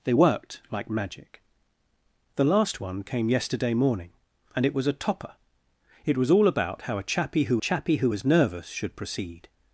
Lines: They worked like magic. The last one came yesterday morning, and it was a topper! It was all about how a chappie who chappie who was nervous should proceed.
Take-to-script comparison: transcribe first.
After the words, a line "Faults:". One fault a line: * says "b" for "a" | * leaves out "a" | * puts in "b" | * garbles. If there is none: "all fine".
They worked like magic. The last one came yesterday morning, and it was a topper! It was all about how a chappie who chappie who was nervous should proceed.
Faults:
all fine